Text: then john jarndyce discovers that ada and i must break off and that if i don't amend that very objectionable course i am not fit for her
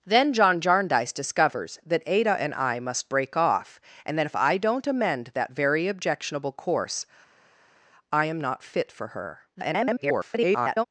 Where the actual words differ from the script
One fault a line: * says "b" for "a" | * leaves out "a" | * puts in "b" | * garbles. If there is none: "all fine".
* garbles